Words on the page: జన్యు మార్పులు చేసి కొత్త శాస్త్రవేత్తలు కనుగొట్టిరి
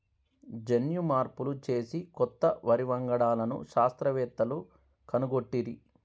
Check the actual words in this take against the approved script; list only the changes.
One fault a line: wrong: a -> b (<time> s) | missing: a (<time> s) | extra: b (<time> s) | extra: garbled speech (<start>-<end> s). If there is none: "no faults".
extra: వరి వంగడాలను (2.7 s)